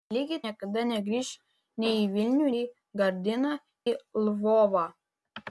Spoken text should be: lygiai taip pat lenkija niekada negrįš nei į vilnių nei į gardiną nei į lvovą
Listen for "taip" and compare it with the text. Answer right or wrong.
wrong